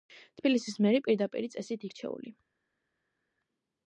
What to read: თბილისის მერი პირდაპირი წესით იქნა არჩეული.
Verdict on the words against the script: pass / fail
fail